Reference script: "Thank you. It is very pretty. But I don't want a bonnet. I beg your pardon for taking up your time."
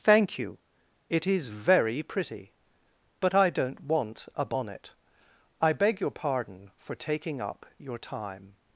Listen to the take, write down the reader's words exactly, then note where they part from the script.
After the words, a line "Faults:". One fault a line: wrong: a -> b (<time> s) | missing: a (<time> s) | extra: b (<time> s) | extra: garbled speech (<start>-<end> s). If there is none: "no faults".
"Thank you. It is very pretty. But I don't want a bonnet. I beg your pardon for taking up your time."
Faults:
no faults